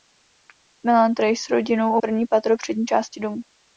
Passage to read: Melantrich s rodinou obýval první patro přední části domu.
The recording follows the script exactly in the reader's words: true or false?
false